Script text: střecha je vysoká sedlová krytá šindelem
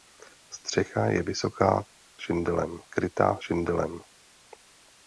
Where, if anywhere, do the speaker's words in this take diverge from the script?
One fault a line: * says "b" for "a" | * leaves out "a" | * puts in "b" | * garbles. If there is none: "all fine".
* says "šindelem" for "sedlová"